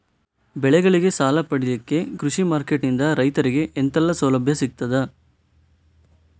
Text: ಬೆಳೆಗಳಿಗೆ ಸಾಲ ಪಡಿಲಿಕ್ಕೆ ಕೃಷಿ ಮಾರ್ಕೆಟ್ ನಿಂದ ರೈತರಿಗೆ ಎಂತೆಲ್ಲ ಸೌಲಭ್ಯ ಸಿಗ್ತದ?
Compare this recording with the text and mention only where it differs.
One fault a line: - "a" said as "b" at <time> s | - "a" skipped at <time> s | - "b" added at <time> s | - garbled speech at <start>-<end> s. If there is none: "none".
none